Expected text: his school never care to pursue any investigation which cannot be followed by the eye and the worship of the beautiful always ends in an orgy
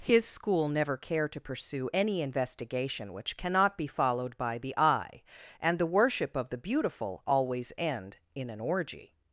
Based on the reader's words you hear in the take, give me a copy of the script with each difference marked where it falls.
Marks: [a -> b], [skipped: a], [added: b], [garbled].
his school never care to pursue any investigation which cannot be followed by the eye and the worship of the beautiful always [ends -> end] in an orgy